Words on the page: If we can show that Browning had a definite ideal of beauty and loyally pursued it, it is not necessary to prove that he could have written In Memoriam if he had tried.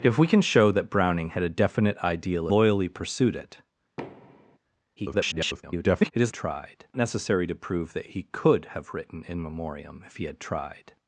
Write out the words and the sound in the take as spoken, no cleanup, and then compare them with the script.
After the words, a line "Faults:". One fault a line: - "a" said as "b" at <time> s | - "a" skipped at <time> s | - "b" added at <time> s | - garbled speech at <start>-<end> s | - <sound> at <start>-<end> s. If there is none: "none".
If we can show that Browning had a definite ideal loyally pursued it, [garbled] it is tried necessary to prove that he could have written In Memoriam if he had tried.
Faults:
- "of beauty and" skipped at 2.5 s
- thud at 4.0-4.6 s
- garbled speech at 5.0-6.1 s
- "not" said as "tried" at 6.3 s